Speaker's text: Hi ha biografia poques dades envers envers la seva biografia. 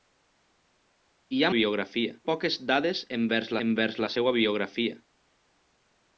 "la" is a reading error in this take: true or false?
false